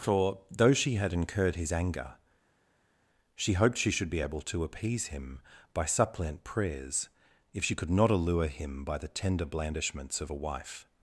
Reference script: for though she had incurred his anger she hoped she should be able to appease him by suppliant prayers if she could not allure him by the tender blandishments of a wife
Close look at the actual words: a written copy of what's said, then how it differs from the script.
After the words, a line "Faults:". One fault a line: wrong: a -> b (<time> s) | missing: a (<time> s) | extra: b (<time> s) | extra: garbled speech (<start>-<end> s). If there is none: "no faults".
for though she had incurred his anger she hoped she should be able to appease him by suppliant prayers if she could not allure him by the tender blandishments of a wife
Faults:
no faults